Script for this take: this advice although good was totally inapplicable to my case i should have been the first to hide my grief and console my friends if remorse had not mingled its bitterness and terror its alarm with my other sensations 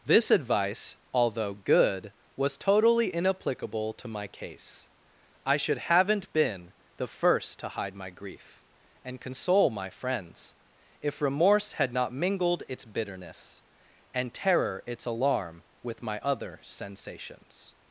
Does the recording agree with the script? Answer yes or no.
no